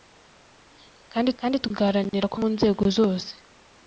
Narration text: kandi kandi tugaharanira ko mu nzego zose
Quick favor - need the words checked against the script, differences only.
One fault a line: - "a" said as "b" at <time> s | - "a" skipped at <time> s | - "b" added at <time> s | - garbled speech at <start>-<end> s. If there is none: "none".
none